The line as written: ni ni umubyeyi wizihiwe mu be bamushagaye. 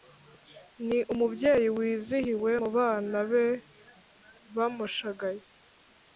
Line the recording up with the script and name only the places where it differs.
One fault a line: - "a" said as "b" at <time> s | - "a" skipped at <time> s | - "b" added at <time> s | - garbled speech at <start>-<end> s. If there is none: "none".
- "ni" skipped at 1.0 s
- "bana" added at 2.8 s